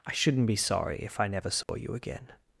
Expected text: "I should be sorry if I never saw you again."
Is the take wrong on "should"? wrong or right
wrong